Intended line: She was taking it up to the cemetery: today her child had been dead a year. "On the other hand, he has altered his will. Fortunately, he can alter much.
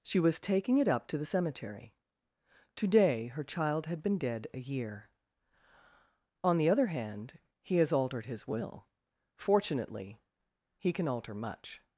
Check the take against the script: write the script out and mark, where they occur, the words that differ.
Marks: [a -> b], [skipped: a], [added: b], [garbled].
She was taking it up to the cemetery: today her child had been dead a year. "On the other hand, he has altered his will. Fortunately, he can alter much.